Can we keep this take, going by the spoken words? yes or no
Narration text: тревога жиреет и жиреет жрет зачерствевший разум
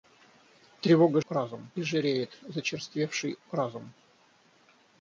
no